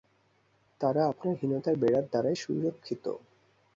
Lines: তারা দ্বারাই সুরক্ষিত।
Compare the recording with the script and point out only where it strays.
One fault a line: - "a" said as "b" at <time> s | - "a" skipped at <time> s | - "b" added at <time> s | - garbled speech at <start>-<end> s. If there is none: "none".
- "আপনার হীনতার বেড়ার" added at 1.1 s